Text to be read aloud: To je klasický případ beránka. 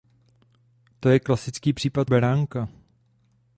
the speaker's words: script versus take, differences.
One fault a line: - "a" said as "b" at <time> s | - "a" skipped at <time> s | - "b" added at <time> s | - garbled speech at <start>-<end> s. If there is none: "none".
none